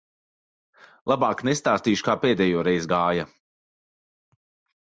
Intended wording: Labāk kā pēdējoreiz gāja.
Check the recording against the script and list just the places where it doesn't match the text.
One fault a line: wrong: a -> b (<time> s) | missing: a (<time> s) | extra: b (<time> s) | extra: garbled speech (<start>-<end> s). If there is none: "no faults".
extra: nestāstīšu (1.5 s)